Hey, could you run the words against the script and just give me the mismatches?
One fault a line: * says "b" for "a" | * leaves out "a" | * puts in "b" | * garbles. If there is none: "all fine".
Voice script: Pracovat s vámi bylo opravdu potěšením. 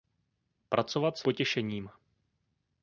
* leaves out "vámi bylo opravdu"